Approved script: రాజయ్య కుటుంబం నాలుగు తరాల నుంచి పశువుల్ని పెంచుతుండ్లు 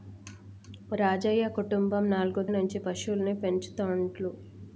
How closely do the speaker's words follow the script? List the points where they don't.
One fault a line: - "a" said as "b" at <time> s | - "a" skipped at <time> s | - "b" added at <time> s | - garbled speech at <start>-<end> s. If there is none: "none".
- "తరాల" skipped at 2.4 s